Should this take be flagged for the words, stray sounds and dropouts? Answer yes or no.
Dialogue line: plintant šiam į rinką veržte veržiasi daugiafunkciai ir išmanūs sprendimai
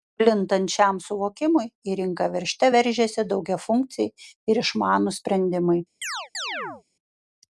yes